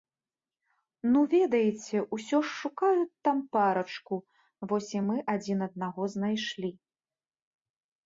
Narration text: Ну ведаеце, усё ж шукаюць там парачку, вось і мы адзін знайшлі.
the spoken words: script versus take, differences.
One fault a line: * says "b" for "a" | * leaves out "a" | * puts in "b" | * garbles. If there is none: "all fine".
* puts in "аднаго"